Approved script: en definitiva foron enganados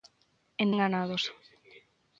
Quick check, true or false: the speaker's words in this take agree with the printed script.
false